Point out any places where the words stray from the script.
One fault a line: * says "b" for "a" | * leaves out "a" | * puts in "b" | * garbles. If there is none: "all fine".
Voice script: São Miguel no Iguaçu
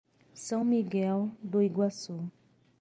* says "do" for "no"